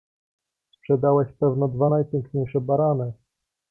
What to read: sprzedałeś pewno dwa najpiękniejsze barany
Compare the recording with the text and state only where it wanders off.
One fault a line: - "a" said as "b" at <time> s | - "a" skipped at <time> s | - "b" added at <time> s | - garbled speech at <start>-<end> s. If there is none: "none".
none